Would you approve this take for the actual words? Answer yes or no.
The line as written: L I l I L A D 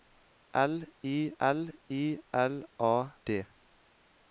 yes